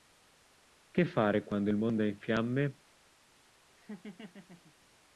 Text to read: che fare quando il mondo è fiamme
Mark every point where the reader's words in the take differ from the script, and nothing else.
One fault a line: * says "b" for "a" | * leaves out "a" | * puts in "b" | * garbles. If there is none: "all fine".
* puts in "in"